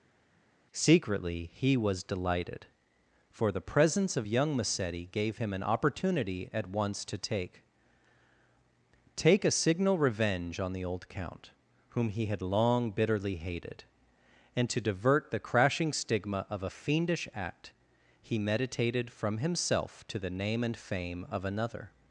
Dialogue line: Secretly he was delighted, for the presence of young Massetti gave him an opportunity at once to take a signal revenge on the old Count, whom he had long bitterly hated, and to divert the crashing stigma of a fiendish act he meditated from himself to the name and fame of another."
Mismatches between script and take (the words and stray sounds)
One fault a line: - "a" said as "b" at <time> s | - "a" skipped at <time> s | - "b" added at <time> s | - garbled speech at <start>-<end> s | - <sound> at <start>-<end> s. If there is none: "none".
- "take" added at 9.1 s